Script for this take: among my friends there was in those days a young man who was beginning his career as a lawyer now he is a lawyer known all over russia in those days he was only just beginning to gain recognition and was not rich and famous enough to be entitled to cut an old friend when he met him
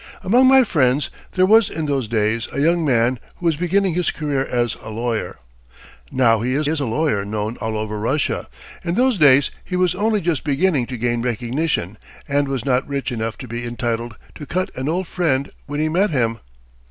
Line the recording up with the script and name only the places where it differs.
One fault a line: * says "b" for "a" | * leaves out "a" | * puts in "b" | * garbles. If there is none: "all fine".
* puts in "is"
* leaves out "and famous"